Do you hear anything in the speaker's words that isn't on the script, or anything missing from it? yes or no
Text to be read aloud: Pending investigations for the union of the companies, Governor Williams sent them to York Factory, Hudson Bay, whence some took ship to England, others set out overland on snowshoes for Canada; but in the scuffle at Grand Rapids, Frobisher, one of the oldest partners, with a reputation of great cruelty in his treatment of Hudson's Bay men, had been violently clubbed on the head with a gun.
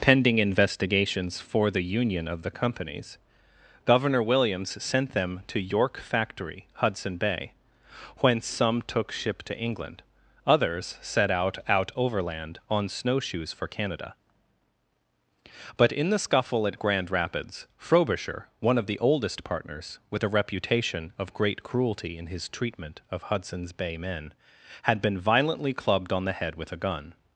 yes